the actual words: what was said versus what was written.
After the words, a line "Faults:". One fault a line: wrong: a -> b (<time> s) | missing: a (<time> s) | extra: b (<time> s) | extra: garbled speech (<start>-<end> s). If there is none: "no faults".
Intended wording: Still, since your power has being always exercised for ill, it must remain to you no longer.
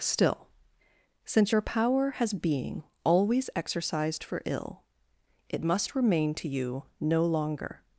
Still, since your power has being always exercised for ill, it must remain to you no longer.
Faults:
no faults